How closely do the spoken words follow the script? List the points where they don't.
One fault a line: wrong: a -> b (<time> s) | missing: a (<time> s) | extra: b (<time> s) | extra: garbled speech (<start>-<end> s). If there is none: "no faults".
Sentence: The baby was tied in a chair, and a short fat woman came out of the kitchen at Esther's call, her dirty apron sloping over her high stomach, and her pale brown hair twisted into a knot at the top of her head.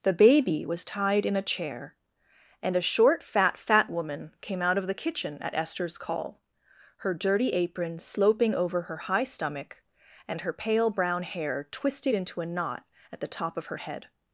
extra: fat (3.6 s)